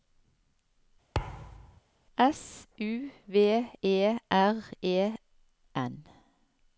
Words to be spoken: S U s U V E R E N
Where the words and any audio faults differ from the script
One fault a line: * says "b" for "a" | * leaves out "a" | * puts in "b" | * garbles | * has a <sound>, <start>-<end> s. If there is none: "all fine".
* has a thud, 1.1-1.8 s
* leaves out "s U"